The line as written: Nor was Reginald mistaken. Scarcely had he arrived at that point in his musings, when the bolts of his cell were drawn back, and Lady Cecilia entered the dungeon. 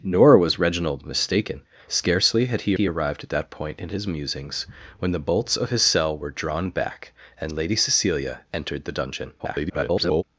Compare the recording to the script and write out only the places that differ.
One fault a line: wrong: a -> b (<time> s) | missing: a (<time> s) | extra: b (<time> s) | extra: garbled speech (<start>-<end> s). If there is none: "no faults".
extra: he (2.7 s)
extra: garbled speech (9.4-10.2 s)